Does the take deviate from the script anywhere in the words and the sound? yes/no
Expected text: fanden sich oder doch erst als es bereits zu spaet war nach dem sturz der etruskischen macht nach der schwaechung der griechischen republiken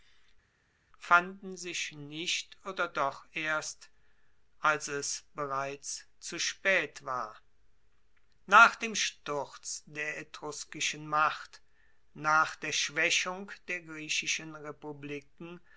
yes